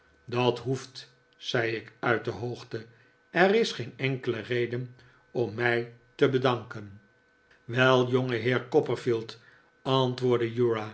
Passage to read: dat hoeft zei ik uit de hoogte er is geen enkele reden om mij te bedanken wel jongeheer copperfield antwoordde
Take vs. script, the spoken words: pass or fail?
pass